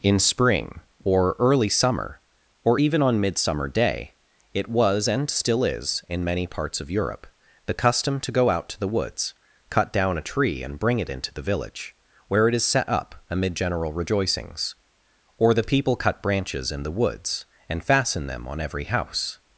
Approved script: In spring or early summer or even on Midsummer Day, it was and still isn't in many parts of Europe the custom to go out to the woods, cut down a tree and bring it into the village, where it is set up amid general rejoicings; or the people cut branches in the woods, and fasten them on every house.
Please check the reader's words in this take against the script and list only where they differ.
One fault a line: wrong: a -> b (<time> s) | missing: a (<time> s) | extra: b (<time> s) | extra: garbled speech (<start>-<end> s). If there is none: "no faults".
wrong: isn't -> is (5.6 s)